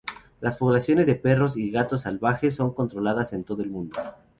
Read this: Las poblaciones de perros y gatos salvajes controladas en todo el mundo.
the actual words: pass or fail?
fail